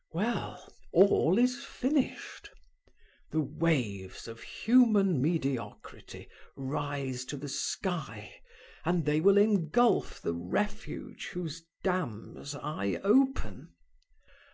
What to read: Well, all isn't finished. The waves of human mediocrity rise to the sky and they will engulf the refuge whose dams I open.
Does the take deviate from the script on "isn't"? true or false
true